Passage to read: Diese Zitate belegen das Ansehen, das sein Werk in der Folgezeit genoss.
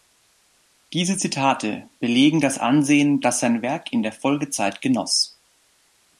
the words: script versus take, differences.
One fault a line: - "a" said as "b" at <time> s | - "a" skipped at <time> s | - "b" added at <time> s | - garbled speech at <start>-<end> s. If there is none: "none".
none